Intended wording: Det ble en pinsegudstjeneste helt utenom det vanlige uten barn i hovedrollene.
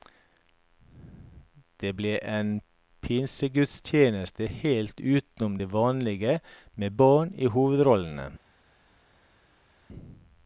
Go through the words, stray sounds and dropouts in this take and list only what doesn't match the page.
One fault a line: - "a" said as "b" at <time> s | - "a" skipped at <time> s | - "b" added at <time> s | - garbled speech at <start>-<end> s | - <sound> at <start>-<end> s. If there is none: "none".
- "uten" said as "med" at 6.7 s